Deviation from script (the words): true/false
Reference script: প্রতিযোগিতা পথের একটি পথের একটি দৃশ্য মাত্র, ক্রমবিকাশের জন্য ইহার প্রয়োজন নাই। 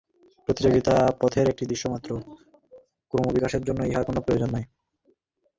true